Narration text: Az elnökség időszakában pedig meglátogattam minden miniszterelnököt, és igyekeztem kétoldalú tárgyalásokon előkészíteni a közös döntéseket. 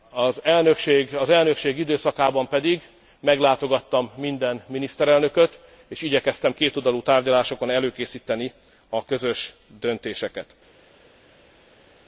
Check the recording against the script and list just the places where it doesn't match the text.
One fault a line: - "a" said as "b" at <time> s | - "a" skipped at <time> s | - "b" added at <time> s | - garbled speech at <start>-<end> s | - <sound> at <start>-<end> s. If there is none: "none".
none